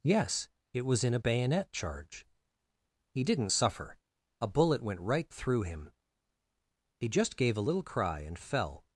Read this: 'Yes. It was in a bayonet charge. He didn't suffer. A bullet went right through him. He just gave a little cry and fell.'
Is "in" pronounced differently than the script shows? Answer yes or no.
no